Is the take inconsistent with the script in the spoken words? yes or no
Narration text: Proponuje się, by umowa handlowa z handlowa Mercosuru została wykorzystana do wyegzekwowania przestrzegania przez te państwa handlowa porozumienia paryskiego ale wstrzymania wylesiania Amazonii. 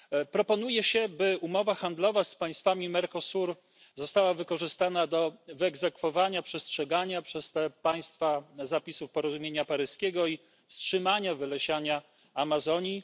yes